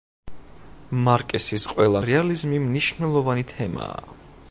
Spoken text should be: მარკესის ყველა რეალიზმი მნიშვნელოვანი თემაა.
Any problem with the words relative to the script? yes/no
no